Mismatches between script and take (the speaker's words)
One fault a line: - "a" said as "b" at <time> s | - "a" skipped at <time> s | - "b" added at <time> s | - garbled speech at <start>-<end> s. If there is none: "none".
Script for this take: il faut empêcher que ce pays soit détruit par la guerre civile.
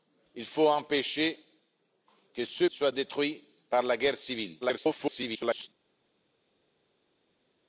- "pays" skipped at 2.6 s
- garbled speech at 4.6-5.7 s